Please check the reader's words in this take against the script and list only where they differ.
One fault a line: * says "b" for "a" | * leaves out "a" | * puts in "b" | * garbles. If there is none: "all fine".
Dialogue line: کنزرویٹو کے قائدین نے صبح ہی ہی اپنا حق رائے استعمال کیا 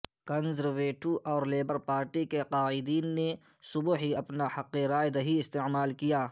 * puts in "اور لیبر پارٹی"
* leaves out "ہی"
* puts in "دہی"